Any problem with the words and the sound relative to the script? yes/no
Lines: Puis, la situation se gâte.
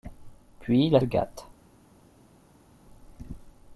yes